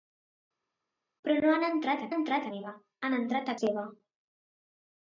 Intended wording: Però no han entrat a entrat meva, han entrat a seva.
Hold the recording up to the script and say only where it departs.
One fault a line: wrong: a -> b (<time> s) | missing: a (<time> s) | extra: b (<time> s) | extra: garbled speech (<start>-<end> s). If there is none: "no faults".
no faults